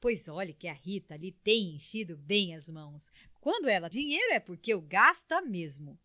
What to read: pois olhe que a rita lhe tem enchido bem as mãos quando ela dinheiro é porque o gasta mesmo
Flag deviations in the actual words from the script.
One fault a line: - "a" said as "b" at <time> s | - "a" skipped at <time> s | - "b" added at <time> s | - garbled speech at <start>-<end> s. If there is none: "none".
none